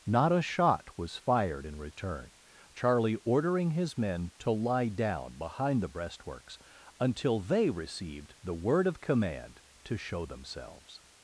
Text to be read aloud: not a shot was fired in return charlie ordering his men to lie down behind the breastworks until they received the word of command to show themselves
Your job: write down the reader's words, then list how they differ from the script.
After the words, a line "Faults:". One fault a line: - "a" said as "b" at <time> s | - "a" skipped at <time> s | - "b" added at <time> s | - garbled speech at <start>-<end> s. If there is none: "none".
not a shot was fired in return charlie ordering his men to lie down behind the breastworks until they received the word of command to show themselves
Faults:
none